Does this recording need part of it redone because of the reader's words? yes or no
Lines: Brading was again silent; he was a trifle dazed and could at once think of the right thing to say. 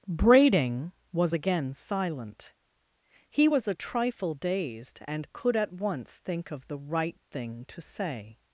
no